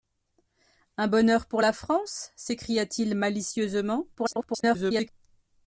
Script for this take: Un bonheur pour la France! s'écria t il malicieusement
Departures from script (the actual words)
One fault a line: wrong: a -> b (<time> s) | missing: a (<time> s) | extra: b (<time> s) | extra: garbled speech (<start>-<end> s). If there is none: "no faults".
extra: garbled speech (4.1-5.1 s)